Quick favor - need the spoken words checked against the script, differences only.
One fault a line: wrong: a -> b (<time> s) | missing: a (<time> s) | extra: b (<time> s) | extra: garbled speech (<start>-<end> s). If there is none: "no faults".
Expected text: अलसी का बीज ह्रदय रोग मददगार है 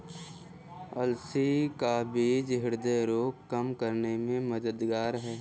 extra: कम करने में (3.5 s)